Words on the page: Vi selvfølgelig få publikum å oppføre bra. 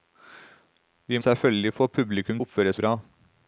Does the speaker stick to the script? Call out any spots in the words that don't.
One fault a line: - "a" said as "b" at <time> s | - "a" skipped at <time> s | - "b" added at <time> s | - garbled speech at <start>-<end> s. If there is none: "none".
none